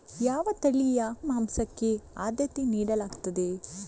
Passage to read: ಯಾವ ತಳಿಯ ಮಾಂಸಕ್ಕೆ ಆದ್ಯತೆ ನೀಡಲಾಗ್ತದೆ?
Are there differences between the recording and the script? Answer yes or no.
no